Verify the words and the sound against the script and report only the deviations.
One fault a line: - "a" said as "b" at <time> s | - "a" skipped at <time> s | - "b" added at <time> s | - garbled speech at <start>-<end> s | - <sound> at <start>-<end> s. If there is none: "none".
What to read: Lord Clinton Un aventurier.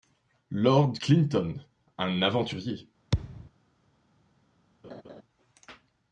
- thud at 3.1-3.5 s
- laugh at 4.8-5.2 s